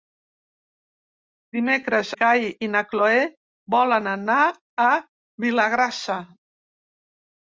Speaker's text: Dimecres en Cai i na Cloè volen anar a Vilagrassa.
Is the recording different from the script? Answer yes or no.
yes